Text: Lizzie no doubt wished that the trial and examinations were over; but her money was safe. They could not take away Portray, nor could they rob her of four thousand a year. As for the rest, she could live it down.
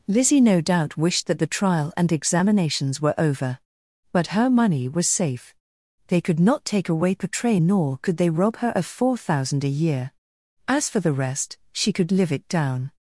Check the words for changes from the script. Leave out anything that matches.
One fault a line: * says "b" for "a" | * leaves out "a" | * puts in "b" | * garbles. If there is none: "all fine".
all fine